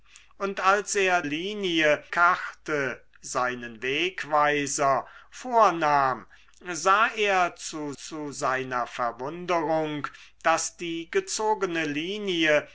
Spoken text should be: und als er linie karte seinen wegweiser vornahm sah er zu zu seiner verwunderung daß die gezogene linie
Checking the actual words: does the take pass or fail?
pass